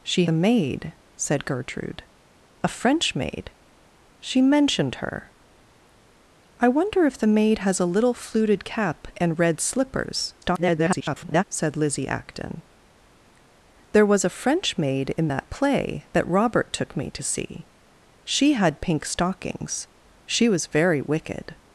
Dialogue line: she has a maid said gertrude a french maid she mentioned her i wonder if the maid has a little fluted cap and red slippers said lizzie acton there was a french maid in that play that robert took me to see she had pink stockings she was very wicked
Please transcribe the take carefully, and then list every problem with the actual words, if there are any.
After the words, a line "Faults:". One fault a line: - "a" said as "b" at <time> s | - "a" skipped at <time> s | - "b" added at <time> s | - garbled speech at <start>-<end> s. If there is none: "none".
she a maid said gertrude a french maid she mentioned her i wonder if the maid has a little fluted cap and red slippers [garbled] said lizzie acton there was a french maid in that play that robert took me to see she had pink stockings she was very wicked
Faults:
- "has" skipped at 0.2 s
- garbled speech at 10.4-11.4 s